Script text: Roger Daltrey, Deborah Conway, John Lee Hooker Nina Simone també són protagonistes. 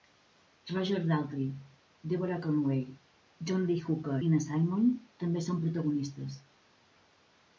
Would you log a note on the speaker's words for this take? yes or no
no